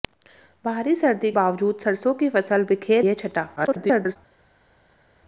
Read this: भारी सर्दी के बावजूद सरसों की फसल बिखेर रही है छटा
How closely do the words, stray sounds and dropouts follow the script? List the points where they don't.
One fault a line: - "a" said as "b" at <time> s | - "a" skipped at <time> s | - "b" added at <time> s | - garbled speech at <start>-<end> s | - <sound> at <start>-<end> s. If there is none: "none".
- "के" skipped at 1.3 s
- "रही" skipped at 3.0 s
- garbled speech at 3.6-4.2 s